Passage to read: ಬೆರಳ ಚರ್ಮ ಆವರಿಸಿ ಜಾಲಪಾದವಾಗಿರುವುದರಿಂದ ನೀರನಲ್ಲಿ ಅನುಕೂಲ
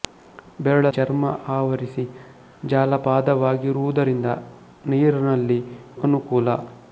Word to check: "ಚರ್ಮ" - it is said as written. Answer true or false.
true